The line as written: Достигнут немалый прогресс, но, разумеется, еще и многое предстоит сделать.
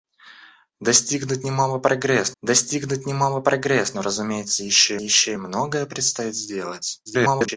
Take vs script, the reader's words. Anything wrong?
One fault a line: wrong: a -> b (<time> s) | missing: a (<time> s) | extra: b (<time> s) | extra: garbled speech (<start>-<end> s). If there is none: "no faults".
extra: достигнут немалый прогресс (2.4 s)
extra: еще (5.0 s)
extra: garbled speech (7.1-7.6 s)